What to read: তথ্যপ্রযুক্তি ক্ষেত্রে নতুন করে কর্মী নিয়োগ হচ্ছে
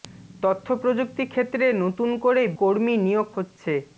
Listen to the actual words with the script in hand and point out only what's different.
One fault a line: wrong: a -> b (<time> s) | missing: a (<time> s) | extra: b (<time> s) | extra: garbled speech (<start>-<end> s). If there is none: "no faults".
no faults